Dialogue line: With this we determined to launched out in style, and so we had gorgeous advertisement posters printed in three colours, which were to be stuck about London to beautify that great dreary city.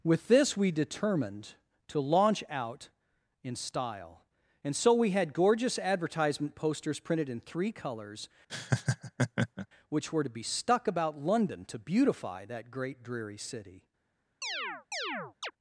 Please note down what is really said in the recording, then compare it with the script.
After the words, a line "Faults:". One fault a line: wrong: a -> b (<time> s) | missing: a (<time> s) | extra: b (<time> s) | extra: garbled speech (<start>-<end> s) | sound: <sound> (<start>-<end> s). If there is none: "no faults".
With this we determined to launch out in style, and so we had gorgeous advertisement posters printed in three colours, which were to be stuck about London to beautify that great dreary city.
Faults:
wrong: launched -> launch (2.0 s)
sound: laugh (8.5-9.7 s)
sound: chirp (14.4-15.5 s)